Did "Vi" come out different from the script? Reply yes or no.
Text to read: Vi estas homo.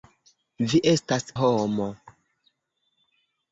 no